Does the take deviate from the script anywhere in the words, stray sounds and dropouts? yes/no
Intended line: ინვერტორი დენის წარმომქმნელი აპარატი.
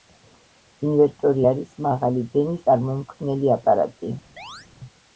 yes